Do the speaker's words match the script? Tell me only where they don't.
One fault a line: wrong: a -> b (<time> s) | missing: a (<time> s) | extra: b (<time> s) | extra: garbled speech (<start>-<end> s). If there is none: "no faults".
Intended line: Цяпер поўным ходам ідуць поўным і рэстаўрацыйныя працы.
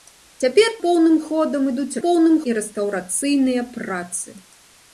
no faults